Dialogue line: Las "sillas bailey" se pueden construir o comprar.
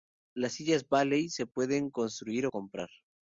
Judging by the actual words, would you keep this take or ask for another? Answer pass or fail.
pass